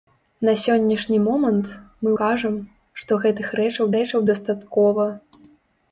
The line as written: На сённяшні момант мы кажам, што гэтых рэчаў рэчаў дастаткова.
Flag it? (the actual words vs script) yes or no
no